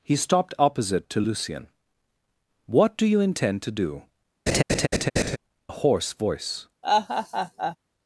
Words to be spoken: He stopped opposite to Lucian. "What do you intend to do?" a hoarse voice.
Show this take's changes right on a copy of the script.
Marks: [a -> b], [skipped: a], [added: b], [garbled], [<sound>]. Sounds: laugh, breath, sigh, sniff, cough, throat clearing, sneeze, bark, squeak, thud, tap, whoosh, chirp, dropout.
He stopped opposite to Lucian. "What do you intend to do?" [laugh] a hoarse voice. [laugh]